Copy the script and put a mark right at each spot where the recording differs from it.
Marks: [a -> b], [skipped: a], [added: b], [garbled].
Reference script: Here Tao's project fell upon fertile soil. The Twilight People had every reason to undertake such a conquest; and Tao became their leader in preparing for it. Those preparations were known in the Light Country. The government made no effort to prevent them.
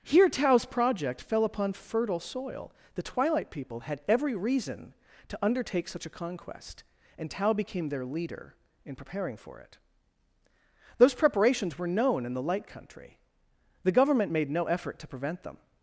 Here Tao's project fell upon fertile soil. The Twilight People had every reason to undertake such a conquest; and Tao became their leader in preparing for it. Those preparations were known in the Light Country. The government made no effort to prevent them.